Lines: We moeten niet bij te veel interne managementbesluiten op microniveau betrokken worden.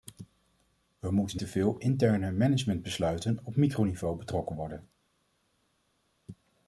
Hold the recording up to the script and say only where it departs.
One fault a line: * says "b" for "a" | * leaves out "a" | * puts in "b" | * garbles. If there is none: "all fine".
* leaves out "niet bij"